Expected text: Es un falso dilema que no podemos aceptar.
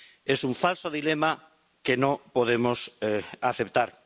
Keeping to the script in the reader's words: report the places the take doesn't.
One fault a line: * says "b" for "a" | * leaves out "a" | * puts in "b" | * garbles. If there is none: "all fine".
all fine